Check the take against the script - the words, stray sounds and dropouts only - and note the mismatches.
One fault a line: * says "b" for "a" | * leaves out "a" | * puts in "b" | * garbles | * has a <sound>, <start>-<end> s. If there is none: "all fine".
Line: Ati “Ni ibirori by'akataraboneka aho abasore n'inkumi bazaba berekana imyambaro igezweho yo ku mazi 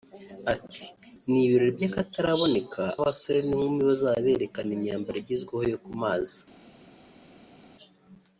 * leaves out "aho"